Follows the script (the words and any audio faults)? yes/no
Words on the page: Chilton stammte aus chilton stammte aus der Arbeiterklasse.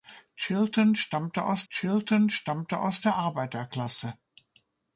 yes